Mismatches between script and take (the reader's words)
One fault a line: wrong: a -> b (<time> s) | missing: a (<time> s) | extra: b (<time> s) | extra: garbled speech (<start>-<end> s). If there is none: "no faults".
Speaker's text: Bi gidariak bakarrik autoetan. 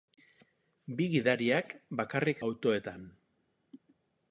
no faults